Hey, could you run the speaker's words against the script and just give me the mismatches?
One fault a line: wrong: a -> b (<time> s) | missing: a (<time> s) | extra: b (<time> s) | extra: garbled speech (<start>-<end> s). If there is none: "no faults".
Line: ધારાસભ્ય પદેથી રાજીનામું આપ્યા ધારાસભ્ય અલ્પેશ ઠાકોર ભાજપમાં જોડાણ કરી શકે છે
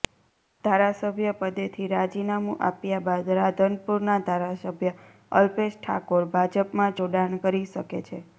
extra: બાદ રાધનપુરના (3.0 s)